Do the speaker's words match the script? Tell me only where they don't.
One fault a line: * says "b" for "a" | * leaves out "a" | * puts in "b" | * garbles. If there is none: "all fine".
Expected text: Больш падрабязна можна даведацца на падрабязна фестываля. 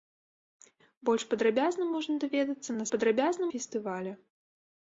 all fine